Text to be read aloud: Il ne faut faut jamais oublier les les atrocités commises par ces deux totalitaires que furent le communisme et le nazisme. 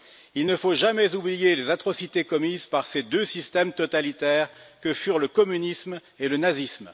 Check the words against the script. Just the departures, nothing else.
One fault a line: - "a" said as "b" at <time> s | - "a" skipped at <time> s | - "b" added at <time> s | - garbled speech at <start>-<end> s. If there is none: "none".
- "faut" skipped at 0.7 s
- "les" skipped at 1.7 s
- "systèmes" added at 3.2 s